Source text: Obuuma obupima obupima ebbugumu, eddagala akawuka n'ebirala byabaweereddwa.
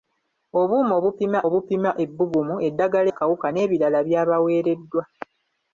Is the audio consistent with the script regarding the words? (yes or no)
yes